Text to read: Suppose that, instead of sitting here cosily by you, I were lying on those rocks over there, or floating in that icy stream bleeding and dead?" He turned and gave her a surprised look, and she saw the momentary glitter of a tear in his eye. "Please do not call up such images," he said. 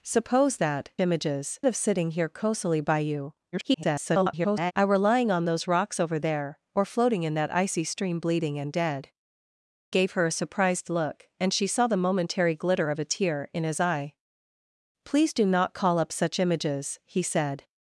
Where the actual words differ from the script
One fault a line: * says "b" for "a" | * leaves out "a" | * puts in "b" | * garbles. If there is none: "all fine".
* says "images" for "instead"
* garbles
* leaves out "He turned and"